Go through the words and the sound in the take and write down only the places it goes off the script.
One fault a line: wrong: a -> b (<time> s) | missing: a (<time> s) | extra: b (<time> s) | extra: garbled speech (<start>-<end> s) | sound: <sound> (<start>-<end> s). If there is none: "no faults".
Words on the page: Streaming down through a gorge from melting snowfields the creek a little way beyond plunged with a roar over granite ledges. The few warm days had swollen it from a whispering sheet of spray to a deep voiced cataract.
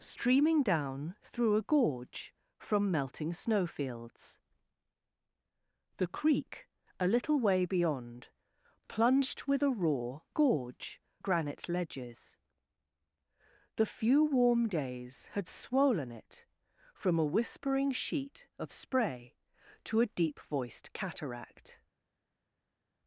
wrong: over -> gorge (10.3 s)